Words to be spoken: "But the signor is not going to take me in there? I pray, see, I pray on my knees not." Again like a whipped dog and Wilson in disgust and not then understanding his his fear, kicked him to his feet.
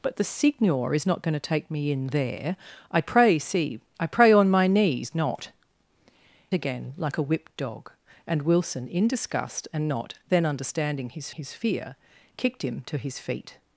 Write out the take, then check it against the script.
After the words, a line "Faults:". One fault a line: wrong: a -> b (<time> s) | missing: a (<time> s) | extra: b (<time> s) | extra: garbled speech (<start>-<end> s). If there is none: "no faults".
"But the signor is not going to take me in there? I pray, see, I pray on my knees not." Again like a whipped dog and Wilson in disgust and not then understanding his his fear, kicked him to his feet.
Faults:
no faults